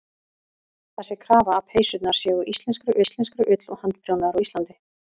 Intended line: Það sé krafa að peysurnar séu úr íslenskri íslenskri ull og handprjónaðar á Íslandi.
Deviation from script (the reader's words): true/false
false